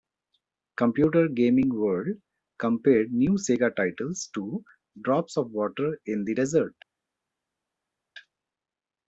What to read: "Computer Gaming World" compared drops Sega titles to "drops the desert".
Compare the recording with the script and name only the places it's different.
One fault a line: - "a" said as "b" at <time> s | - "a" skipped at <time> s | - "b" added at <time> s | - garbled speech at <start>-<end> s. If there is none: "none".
- "drops" said as "new" at 3.1 s
- "of water in" added at 5.4 s